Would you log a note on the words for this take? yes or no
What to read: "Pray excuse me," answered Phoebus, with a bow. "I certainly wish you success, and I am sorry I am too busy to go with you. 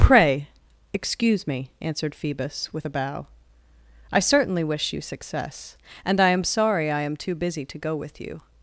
no